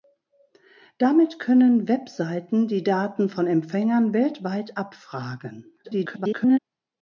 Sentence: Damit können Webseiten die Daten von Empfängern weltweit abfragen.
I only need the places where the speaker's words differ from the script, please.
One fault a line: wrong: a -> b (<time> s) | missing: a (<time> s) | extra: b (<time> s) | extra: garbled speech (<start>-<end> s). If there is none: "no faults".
extra: garbled speech (5.8-6.6 s)